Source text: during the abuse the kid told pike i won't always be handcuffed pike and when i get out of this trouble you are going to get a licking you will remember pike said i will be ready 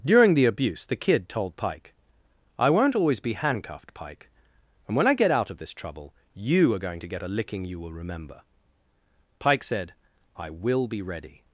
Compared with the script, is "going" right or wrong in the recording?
right